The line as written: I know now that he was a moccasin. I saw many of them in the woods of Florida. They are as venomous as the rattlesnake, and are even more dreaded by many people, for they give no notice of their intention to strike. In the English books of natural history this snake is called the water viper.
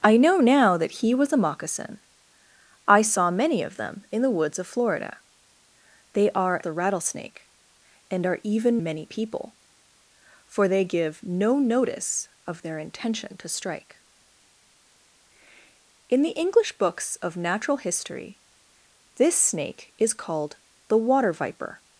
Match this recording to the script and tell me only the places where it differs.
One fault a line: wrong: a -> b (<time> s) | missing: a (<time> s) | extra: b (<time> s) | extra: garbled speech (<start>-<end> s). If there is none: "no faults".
missing: as venomous as (6.6 s)
missing: more dreaded by (8.8 s)